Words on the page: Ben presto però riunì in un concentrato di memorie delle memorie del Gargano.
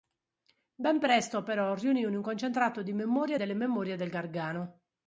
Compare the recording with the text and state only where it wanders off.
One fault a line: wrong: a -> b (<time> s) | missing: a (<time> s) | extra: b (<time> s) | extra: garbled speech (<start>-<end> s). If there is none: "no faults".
no faults